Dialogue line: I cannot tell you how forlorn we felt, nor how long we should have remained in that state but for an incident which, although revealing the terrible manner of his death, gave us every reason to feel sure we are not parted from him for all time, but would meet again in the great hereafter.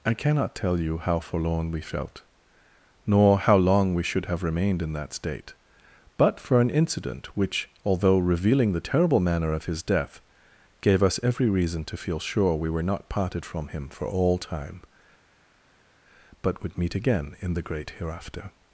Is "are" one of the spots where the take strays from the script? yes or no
yes